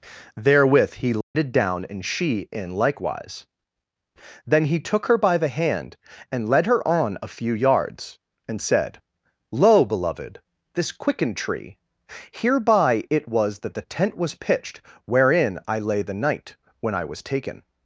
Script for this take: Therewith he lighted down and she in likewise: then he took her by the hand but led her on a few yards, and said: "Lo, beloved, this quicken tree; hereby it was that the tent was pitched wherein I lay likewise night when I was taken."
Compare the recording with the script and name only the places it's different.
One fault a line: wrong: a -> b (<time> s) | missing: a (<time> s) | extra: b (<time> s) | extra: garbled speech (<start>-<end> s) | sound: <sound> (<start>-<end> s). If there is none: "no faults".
sound: dropout (1.2-1.3 s)
wrong: but -> and (6.3 s)
wrong: likewise -> the (16.0 s)